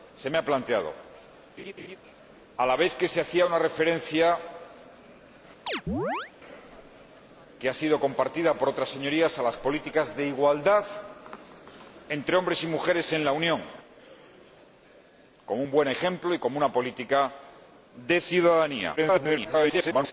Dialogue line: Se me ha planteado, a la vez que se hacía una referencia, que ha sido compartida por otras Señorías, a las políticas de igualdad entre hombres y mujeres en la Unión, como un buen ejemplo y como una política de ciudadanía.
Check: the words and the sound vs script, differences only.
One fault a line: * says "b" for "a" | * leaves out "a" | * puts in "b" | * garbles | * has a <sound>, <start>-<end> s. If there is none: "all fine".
* has a laugh, 1.6-2.0 s
* has a chirp, 5.7-6.3 s
* garbles